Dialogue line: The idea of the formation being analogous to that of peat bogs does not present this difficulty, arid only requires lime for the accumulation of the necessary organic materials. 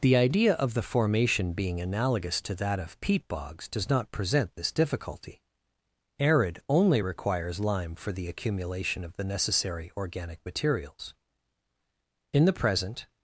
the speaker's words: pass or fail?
fail